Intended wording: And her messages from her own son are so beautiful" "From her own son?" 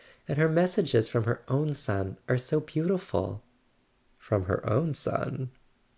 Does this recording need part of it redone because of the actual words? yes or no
no